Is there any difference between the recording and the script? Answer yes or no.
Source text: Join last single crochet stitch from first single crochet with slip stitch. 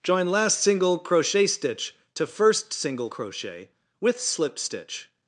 yes